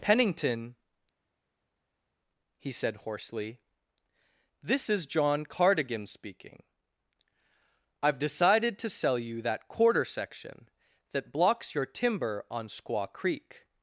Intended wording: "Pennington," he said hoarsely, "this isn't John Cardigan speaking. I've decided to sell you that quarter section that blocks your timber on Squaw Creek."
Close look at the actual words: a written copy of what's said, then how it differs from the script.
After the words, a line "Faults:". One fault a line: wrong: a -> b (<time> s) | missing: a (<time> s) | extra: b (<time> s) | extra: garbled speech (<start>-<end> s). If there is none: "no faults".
"Pennington," he said hoarsely, "this is John Cardigan speaking. I've decided to sell you that quarter section that blocks your timber on Squaw Creek."
Faults:
wrong: isn't -> is (4.9 s)